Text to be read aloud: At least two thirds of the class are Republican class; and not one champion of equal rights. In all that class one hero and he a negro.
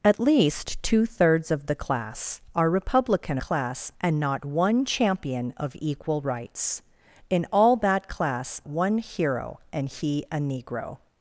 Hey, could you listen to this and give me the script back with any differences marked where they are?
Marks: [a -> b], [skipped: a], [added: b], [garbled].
At least two thirds of the class are Republican class; and not one champion of equal rights. In all that class one hero and he a negro.